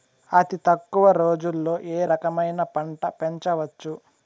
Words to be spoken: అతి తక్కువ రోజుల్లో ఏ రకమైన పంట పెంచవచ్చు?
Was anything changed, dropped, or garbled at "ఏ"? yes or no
no